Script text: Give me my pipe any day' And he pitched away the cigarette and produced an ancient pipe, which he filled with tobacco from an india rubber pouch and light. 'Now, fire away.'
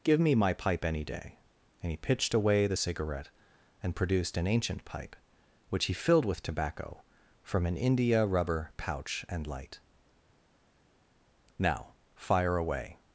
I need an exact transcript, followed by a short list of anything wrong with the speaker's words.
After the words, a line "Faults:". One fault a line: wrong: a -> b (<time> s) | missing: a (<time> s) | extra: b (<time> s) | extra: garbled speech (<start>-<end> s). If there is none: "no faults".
Give me my pipe any day' And he pitched away the cigarette and produced an ancient pipe, which he filled with tobacco from an india rubber pouch and light. 'Now, fire away.'
Faults:
no faults